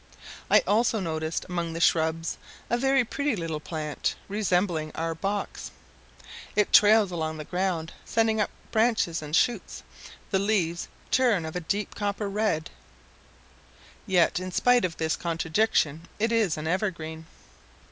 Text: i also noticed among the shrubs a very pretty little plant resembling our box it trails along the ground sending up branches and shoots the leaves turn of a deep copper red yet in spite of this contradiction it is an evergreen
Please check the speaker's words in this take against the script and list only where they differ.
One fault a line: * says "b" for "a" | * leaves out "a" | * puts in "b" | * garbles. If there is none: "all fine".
all fine